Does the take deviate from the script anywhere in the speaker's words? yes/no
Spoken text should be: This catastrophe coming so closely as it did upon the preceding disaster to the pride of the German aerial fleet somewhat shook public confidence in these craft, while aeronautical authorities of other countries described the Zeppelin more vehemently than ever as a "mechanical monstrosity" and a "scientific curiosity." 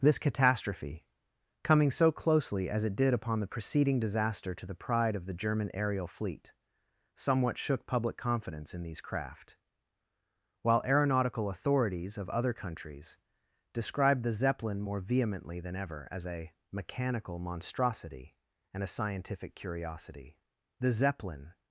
yes